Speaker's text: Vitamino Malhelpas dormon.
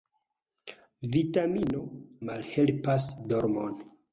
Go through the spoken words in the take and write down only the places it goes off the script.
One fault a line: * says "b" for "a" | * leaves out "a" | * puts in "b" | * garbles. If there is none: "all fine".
all fine